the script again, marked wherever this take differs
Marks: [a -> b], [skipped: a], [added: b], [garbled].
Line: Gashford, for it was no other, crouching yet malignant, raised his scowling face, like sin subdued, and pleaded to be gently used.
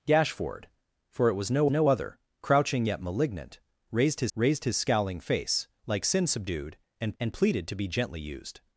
Gashford, for it was no [added: no] other, crouching yet malignant, raised his [added: raised his] scowling face, like sin subdued, and [added: and] pleaded to be gently used.